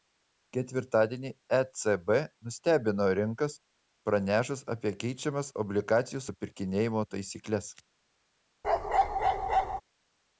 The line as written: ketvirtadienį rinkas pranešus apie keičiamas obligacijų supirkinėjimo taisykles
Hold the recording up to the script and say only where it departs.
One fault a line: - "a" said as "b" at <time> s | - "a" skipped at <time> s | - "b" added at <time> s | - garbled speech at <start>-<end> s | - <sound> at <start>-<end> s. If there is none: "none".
- "ecb nustebino" added at 1.6 s
- bark at 8.6-9.8 s